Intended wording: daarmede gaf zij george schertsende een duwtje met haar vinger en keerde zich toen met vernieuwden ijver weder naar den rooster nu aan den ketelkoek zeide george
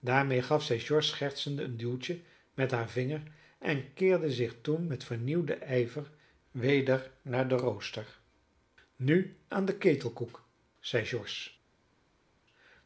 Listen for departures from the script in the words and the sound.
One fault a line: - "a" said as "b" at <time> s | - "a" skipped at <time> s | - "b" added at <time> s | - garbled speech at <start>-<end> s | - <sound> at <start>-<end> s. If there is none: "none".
none